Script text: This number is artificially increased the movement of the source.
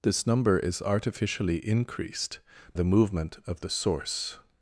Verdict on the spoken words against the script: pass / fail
pass